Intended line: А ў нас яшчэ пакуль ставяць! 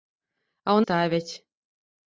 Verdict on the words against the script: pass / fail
fail